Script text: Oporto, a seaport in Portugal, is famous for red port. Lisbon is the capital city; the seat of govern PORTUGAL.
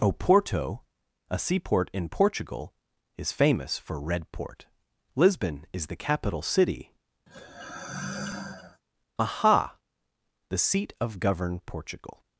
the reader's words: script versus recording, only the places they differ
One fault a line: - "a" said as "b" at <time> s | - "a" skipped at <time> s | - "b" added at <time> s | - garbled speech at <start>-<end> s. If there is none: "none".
- "aha" added at 9.2 s